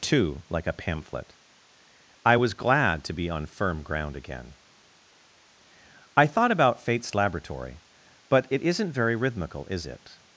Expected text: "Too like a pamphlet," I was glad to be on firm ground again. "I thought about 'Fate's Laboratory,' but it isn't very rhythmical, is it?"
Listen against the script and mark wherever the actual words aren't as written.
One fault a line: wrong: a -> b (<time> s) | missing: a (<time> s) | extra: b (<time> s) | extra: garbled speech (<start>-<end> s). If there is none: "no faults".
no faults